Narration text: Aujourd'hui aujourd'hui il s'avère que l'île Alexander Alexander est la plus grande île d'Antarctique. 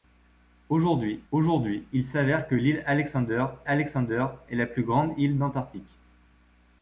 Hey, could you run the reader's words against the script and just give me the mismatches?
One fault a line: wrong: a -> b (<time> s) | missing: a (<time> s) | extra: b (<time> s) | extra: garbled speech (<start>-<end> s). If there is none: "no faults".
no faults